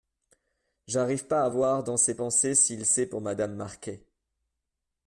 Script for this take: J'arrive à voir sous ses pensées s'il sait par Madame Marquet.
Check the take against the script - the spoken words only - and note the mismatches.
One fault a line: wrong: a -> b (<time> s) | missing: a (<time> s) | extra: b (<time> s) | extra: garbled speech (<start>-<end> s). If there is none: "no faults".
extra: pas (1.3 s)
wrong: sous -> dans (1.8 s)
wrong: par -> pour (3.1 s)